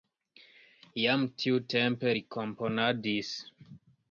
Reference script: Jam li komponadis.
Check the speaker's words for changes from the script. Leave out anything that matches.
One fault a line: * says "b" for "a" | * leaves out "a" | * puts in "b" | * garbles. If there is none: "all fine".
* puts in "tiutempe"